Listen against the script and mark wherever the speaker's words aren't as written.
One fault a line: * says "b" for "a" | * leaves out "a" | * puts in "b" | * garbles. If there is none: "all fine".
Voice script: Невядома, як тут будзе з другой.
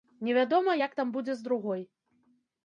* says "там" for "тут"